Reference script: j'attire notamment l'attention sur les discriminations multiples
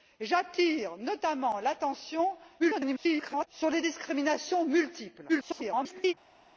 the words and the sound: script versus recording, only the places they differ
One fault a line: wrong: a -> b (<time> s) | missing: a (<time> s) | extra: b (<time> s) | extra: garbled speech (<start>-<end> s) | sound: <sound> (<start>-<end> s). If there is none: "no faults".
extra: garbled speech (2.6-3.5 s)
extra: garbled speech (5.3-6.1 s)